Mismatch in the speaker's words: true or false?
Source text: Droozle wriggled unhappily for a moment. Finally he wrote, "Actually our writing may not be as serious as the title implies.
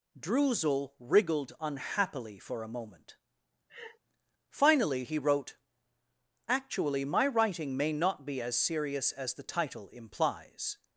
true